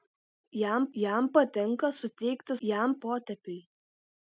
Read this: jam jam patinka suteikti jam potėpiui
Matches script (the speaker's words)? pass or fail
pass